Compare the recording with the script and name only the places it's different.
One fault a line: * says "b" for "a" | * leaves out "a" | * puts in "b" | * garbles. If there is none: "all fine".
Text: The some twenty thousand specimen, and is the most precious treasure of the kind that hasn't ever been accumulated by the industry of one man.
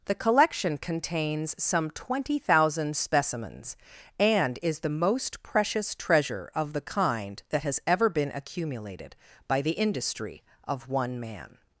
* puts in "collection contains"
* says "specimens" for "specimen"
* says "has" for "hasn't"